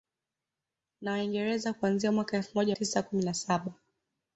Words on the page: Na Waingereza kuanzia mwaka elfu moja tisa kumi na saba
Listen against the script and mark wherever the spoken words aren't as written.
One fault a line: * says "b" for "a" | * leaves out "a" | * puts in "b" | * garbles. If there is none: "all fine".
all fine